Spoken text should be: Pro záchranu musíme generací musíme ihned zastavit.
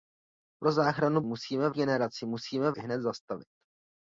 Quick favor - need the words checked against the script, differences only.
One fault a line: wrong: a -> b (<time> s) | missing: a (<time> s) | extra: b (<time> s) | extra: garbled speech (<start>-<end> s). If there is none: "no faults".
no faults